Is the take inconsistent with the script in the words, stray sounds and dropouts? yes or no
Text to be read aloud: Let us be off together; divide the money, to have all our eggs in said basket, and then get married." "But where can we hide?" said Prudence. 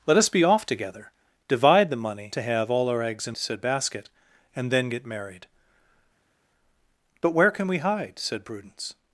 no